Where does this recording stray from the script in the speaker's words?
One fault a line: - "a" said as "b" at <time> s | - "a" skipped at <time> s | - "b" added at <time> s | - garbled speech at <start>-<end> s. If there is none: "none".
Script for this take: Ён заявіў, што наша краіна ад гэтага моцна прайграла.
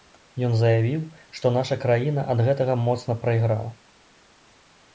none